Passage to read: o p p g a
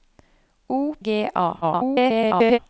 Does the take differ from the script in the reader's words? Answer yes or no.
yes